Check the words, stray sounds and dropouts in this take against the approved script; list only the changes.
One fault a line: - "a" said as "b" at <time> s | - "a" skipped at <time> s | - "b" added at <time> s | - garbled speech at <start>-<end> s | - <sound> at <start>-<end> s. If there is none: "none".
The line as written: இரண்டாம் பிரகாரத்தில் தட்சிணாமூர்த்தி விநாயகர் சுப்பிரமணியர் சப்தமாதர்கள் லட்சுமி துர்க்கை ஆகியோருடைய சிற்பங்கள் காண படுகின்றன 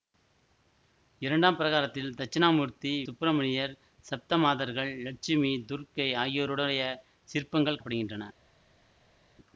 - "விநாயகர்" skipped at 2.9 s
- "காண" skipped at 7.8 s